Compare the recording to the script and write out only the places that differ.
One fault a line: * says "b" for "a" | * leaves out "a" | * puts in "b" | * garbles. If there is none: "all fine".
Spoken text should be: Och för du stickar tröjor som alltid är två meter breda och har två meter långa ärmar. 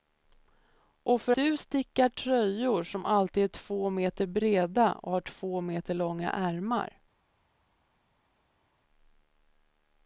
all fine